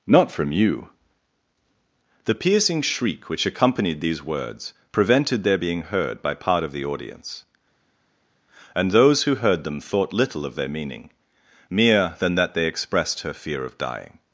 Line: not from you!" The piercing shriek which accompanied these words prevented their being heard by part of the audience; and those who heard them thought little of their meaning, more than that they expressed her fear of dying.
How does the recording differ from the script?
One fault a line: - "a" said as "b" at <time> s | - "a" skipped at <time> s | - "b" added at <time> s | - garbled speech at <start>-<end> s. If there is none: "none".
- "more" said as "mere" at 11.7 s